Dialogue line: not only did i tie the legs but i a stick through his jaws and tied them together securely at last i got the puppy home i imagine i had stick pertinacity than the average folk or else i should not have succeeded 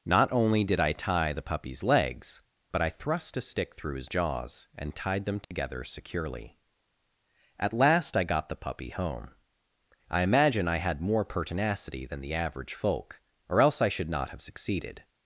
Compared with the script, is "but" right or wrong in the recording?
right